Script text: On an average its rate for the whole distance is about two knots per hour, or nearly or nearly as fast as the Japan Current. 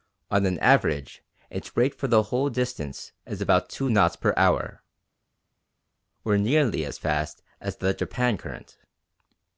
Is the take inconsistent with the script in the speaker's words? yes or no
yes